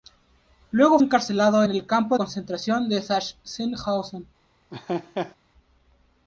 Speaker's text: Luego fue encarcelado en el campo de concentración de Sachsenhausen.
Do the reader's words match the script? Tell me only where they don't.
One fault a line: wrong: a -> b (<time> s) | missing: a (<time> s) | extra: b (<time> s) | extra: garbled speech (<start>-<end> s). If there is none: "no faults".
missing: fue (1.0 s)
missing: de (2.2 s)